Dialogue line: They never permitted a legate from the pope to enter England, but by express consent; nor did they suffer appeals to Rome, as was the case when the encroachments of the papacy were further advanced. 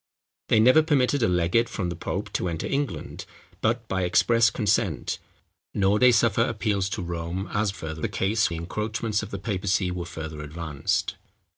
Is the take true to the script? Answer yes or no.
no